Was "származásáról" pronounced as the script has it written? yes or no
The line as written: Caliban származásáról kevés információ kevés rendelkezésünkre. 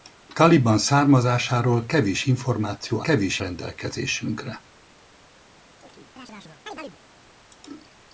yes